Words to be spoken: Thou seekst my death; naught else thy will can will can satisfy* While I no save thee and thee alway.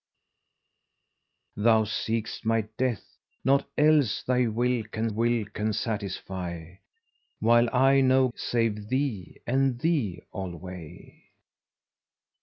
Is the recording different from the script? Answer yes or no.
no